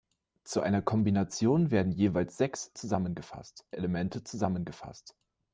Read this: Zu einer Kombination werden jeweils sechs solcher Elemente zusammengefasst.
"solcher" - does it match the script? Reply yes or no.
no